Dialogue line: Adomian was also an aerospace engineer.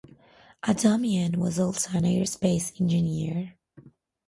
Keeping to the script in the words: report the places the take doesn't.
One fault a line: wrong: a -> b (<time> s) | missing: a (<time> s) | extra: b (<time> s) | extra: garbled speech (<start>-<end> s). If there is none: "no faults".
no faults